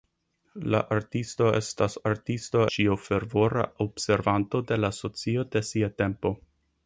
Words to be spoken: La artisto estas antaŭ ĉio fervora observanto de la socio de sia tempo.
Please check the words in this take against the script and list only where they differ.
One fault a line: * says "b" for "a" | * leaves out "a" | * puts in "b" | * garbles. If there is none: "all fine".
* says "artisto" for "antaŭ"